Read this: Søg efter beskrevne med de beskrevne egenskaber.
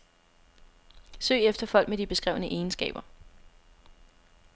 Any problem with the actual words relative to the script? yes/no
yes